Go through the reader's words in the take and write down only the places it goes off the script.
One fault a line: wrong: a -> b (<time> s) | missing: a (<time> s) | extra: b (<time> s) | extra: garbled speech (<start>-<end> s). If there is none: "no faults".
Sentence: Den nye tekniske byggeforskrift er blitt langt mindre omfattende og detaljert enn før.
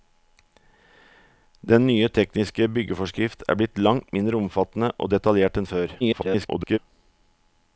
extra: garbled speech (6.0-6.8 s)